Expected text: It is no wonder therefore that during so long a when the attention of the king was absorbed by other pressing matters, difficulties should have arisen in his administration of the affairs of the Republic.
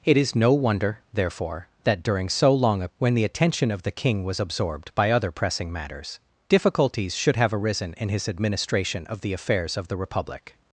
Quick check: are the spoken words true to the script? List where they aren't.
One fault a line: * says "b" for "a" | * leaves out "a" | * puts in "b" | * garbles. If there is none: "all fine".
all fine